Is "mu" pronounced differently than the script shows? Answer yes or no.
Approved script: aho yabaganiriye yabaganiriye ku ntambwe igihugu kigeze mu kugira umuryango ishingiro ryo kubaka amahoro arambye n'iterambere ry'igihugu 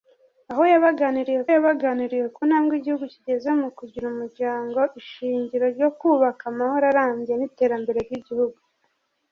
no